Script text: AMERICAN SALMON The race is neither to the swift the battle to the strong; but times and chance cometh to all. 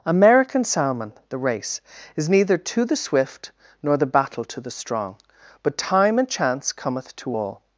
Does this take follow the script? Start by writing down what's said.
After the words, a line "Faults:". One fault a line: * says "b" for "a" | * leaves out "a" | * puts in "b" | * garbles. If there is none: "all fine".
AMERICAN SALMON The race is neither to the swift nor the battle to the strong; but time and chance cometh to all.
Faults:
* puts in "nor"
* says "time" for "times"